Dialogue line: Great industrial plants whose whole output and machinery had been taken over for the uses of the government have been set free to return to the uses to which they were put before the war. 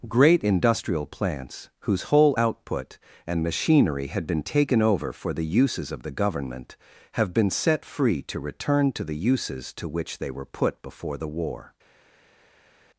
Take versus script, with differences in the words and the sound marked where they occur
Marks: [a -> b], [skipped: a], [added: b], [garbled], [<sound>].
Great industrial plants whose whole output and machinery had been taken over for the uses of the government have been set free to return to the uses to which they were put before the war.